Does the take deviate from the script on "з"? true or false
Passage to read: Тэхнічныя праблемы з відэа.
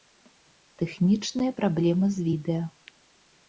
false